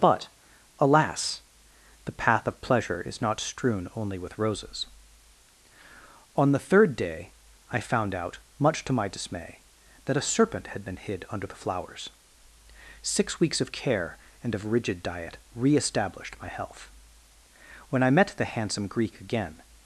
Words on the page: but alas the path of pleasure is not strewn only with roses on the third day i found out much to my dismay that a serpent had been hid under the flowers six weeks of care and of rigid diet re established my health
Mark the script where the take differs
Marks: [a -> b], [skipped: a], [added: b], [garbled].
but alas the path of pleasure is not strewn only with roses on the third day i found out much to my dismay that a serpent had been hid under the flowers six weeks of care and of rigid diet re established my health [added: when i met the handsome greek again]